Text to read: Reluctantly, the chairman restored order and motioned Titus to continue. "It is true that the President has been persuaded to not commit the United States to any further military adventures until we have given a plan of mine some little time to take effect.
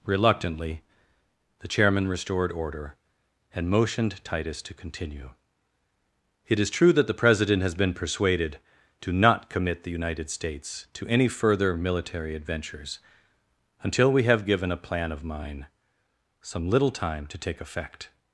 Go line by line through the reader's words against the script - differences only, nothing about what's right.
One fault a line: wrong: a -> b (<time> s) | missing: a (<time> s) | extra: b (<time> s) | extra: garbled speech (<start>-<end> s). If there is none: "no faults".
no faults